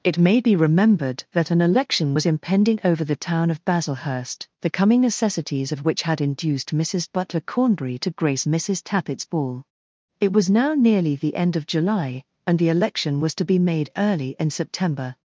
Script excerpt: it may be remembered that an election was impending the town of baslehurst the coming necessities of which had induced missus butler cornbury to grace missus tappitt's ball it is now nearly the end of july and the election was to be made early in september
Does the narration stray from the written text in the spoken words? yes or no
yes